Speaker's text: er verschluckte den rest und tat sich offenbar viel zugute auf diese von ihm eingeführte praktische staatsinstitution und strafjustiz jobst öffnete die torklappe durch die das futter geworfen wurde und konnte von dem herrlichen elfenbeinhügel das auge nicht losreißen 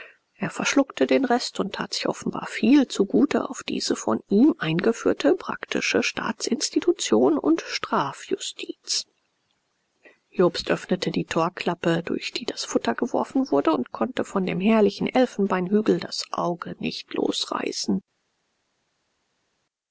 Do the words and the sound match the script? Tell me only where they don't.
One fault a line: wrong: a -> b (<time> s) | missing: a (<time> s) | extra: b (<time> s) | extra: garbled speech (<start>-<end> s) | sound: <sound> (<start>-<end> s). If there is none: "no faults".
no faults